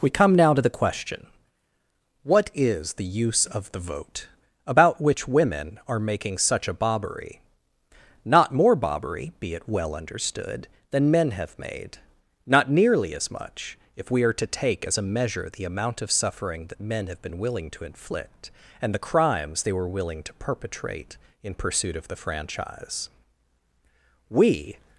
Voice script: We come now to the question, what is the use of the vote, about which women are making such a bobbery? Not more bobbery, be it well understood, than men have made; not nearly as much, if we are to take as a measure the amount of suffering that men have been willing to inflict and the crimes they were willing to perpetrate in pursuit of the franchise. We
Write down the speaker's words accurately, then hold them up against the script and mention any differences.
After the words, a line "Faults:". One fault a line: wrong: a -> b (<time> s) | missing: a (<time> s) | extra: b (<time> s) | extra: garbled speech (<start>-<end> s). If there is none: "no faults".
We come now to the question, what is the use of the vote, about which women are making such a bobbery? Not more bobbery, be it well understood, than men have made; not nearly as much, if we are to take as a measure the amount of suffering that men have been willing to inflict and the crimes they were willing to perpetrate in pursuit of the franchise. We
Faults:
no faults